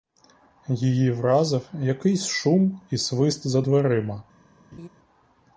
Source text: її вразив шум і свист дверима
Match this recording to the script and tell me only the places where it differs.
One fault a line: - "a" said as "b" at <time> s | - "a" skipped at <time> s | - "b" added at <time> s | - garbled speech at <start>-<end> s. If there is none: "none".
- "якийсь" added at 1.7 s
- "за" added at 3.5 s